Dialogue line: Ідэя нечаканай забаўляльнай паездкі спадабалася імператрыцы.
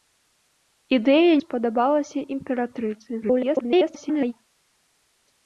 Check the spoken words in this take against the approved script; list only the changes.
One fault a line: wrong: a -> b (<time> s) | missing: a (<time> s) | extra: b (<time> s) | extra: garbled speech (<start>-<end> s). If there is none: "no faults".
missing: нечаканай забаўляльнай паездкі (1.3 s)
extra: garbled speech (3.2-4.3 s)